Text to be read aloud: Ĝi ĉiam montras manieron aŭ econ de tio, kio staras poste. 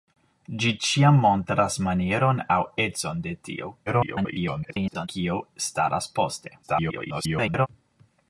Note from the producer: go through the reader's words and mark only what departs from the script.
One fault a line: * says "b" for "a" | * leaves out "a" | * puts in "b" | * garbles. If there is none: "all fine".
* garbles
* garbles